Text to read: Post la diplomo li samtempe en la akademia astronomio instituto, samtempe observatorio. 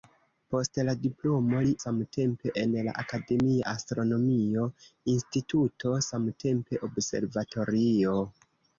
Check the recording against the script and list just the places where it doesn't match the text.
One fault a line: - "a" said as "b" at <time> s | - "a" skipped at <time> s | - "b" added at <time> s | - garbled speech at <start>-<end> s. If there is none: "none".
none